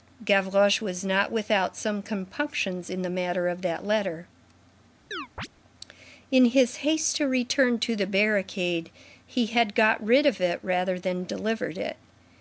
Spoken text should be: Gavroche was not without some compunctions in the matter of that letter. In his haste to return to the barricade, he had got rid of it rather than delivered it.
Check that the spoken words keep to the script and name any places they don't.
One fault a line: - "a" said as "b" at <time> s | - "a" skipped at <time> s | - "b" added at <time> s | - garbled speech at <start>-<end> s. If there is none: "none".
none